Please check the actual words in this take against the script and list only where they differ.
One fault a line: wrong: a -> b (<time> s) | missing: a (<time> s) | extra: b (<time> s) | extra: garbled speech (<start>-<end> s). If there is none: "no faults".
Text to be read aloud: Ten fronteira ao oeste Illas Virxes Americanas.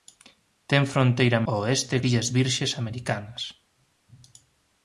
no faults